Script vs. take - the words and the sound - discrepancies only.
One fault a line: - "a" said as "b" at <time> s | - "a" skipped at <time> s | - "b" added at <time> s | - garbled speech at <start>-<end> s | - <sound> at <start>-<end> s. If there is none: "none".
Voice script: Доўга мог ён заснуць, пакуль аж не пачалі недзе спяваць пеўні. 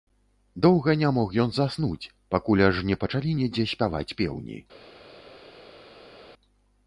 - "не" added at 1.0 s